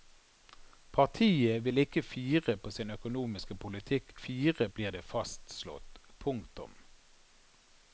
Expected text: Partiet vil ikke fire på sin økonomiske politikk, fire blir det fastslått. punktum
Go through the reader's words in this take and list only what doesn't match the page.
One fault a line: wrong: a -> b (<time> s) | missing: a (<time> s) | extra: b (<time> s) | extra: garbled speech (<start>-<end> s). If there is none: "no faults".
no faults